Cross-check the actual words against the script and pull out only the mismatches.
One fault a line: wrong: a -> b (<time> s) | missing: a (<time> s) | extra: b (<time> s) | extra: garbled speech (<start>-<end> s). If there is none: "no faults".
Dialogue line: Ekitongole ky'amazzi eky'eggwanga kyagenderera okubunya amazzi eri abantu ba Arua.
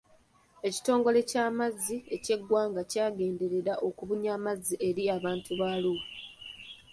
no faults